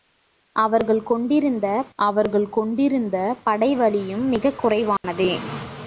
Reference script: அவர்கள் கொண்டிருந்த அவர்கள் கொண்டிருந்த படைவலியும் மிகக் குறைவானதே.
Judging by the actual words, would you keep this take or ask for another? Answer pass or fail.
pass